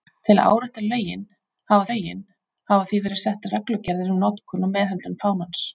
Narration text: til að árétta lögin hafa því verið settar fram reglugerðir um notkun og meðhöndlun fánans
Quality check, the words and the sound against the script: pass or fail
fail